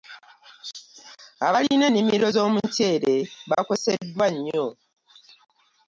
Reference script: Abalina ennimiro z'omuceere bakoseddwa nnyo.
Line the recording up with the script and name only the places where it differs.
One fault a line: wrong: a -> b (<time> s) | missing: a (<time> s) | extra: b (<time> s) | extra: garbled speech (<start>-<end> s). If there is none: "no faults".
no faults